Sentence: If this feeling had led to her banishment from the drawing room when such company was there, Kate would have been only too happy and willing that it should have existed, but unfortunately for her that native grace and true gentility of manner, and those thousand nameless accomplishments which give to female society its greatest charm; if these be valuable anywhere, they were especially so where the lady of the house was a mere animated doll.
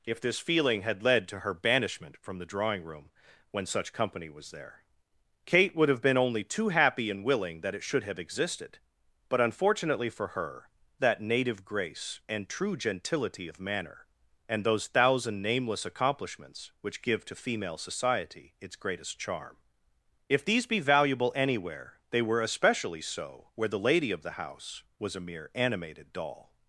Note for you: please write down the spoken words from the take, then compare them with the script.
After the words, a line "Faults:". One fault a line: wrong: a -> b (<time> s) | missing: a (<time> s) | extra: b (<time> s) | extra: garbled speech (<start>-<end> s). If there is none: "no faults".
If this feeling had led to her banishment from the drawing room when such company was there, Kate would have been only too happy and willing that it should have existed, but unfortunately for her that native grace and true gentility of manner, and those thousand nameless accomplishments which give to female society its greatest charm; if these be valuable anywhere, they were especially so where the lady of the house was a mere animated doll.
Faults:
no faults